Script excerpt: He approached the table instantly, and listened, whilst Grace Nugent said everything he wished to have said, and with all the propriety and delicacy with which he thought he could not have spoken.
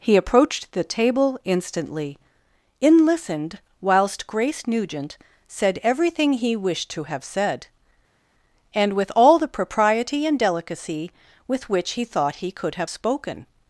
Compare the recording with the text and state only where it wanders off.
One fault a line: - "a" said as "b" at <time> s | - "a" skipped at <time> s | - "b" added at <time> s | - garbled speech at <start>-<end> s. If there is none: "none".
- "and" said as "in" at 2.8 s
- "not" skipped at 12.7 s